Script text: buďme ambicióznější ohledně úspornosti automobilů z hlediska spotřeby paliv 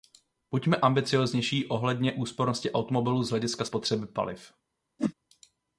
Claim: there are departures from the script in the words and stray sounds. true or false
true